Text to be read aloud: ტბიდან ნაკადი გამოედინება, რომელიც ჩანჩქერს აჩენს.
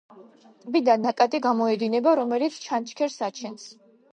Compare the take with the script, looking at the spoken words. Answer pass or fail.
pass